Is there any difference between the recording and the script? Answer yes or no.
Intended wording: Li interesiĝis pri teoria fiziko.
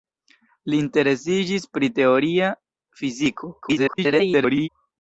yes